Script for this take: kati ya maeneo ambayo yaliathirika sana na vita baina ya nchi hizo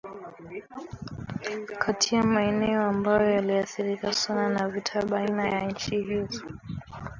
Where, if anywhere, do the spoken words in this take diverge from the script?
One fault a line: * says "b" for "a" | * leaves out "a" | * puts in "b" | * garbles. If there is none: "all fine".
all fine